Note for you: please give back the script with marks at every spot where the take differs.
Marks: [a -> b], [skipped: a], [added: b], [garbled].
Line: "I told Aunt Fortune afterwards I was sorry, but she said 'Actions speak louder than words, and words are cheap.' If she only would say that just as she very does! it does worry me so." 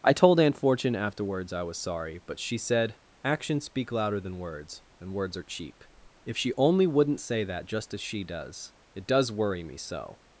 "I told Aunt Fortune afterwards I was sorry, but she said 'Actions speak louder than words, and words are cheap.' If she only [would -> wouldn't] say that just as she [skipped: very] does! it does worry me so."